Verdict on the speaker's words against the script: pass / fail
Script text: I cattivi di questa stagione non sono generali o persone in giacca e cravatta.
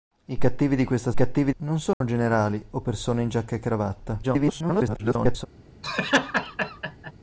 fail